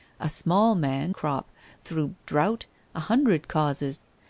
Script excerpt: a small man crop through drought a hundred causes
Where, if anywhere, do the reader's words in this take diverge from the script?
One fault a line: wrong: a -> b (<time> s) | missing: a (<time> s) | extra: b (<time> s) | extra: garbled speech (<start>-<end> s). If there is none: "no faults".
no faults